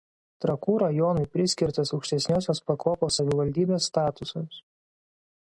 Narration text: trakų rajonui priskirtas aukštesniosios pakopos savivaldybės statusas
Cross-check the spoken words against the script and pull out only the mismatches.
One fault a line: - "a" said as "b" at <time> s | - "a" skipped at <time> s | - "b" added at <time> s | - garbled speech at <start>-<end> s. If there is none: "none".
none